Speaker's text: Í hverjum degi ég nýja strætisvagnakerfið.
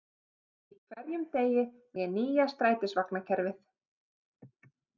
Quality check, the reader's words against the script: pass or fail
pass